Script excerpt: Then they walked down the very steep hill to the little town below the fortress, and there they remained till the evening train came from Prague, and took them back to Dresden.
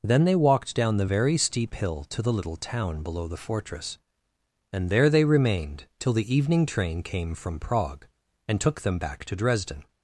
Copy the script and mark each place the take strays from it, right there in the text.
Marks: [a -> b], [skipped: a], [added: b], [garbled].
Then they walked down the very steep hill to the little town below the fortress, and there they remained till the evening train came from Prague, and took them back to Dresden.